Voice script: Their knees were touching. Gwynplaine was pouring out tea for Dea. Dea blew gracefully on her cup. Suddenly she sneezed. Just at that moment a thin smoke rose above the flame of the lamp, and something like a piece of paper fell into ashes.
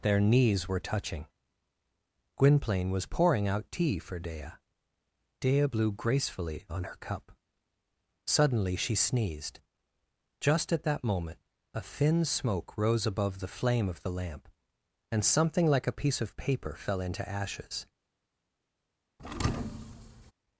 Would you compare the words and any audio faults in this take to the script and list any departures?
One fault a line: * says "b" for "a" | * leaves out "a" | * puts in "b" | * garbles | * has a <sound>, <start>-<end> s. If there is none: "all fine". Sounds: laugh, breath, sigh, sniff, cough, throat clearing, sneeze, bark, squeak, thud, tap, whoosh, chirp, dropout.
* has a thud, 19.2-20.3 s